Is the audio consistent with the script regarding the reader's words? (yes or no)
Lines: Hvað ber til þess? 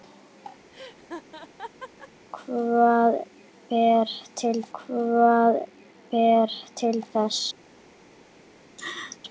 no